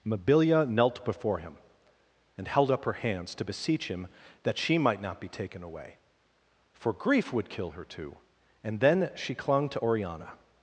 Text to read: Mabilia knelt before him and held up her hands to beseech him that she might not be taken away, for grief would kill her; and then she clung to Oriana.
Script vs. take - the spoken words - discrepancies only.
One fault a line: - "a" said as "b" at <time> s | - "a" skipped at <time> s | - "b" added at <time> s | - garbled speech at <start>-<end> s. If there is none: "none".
- "too" added at 7.8 s